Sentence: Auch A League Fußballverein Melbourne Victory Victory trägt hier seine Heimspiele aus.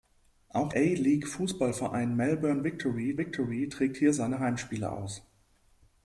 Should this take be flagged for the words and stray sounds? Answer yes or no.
no